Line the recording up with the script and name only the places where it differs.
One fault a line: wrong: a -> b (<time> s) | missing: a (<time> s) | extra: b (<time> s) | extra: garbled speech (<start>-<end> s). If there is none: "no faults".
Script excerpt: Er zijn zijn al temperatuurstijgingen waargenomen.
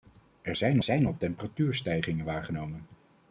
no faults